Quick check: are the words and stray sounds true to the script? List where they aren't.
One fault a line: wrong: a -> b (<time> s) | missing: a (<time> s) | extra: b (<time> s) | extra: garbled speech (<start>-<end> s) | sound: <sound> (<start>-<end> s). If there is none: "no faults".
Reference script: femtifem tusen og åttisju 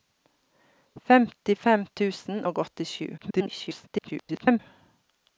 extra: garbled speech (3.2-4.6 s)